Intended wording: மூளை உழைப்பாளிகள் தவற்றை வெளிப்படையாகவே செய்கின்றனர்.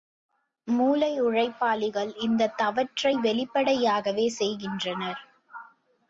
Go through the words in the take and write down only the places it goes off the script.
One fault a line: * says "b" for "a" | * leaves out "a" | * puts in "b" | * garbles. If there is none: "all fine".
* puts in "இந்தத்"